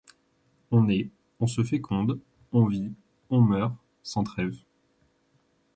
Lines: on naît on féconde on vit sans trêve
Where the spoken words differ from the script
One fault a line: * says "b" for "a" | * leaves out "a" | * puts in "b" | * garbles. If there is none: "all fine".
* puts in "se"
* puts in "on meurt"